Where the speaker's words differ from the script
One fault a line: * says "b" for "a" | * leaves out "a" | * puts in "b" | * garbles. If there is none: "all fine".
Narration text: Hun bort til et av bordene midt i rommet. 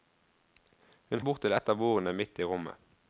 all fine